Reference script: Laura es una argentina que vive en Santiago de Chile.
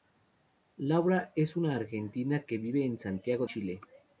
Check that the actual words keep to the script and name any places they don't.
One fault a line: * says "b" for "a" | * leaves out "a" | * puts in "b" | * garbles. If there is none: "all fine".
* leaves out "de"